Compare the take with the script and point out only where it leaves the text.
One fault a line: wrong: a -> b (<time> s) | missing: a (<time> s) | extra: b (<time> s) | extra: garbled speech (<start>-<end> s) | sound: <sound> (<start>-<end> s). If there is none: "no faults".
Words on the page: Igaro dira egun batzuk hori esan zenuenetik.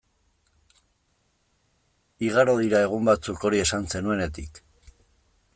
no faults